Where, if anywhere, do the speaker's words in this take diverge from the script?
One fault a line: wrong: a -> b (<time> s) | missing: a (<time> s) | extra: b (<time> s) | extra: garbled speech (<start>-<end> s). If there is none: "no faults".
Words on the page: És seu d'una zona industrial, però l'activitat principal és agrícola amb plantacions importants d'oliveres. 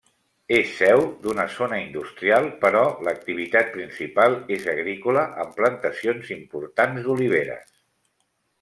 no faults